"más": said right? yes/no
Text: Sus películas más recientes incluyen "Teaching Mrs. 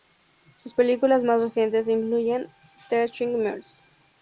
yes